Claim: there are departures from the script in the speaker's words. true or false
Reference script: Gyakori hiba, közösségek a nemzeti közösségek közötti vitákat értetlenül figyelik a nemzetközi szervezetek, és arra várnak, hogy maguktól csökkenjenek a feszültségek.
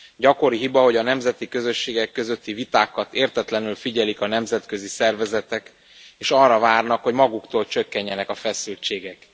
true